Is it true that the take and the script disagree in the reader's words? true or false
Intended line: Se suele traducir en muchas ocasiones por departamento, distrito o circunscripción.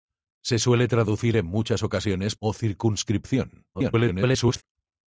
true